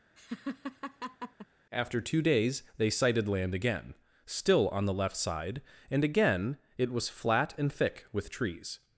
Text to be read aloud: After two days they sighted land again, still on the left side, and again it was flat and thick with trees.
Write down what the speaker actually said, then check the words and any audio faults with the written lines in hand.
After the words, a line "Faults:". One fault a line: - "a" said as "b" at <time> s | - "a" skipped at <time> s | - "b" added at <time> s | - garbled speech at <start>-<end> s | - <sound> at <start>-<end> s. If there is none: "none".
After two days they sighted land again, still on the left side, and again it was flat and thick with trees.
Faults:
- laugh at 0.2-1.5 s